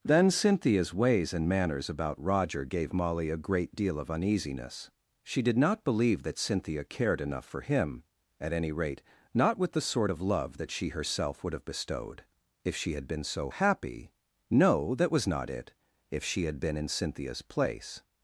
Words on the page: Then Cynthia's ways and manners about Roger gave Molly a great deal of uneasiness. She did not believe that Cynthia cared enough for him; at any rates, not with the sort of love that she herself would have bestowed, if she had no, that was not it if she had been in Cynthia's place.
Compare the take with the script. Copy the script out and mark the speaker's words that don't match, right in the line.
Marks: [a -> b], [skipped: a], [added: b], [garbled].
Then Cynthia's ways and manners about Roger gave Molly a great deal of uneasiness. She did not believe that Cynthia cared enough for him; at any [rates, -> rate] not with the sort of love that she herself would have bestowed, if she had [added: been so happy] no, that was not it if she had been in Cynthia's place.